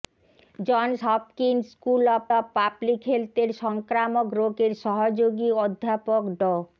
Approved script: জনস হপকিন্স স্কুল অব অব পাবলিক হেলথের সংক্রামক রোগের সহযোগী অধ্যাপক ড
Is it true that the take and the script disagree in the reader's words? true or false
false